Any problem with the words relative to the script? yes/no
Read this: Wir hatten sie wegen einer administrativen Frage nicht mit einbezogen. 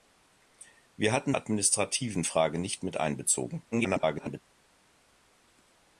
yes